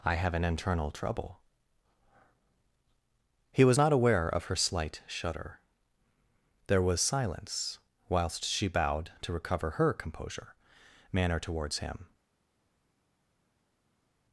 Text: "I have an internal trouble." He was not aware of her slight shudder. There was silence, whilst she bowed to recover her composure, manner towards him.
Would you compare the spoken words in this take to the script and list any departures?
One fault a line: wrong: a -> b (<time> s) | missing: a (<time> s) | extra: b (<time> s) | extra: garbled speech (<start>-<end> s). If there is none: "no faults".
no faults